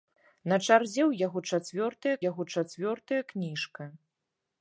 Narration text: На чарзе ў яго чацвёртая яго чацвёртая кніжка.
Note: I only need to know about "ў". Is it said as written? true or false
true